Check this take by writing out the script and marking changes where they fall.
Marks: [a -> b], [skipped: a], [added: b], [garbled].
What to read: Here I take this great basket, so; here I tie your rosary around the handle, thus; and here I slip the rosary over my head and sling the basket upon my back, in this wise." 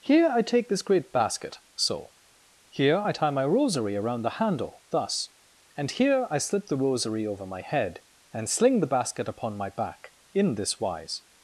Here I take this great basket, so; here I tie [your -> my] rosary around the handle, thus; and here I slip the rosary over my head and sling the basket upon my back, in this wise."